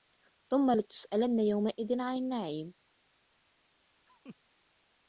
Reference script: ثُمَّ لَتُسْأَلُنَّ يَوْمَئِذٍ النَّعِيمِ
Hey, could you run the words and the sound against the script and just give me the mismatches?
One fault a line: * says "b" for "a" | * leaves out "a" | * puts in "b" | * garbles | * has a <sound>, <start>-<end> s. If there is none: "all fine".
* puts in "عَنِ"
* has a laugh, 4.1-4.4 s